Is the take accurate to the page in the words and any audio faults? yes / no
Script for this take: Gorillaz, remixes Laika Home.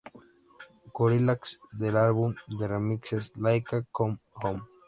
no